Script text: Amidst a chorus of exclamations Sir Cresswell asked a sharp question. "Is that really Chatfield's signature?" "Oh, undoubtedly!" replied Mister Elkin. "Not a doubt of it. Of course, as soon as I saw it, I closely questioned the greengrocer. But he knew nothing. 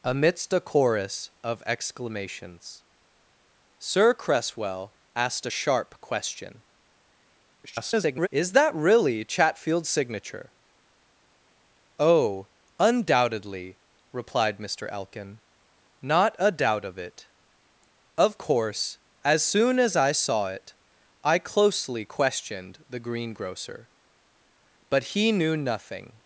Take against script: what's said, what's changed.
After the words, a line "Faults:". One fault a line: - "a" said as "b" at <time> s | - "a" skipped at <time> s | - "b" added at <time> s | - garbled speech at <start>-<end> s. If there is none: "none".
Amidst a chorus of exclamations Sir Cresswell asked a sharp question. [garbled] "Is that really Chatfield's signature?" "Oh, undoubtedly!" replied Mister Elkin. "Not a doubt of it. Of course, as soon as I saw it, I closely questioned the greengrocer. But he knew nothing.
Faults:
- garbled speech at 7.6-8.3 s